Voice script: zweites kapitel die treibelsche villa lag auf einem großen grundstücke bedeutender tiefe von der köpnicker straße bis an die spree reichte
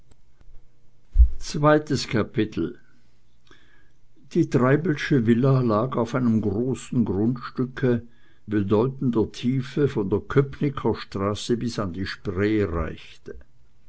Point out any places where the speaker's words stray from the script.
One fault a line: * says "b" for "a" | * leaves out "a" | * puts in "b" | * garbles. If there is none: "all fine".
all fine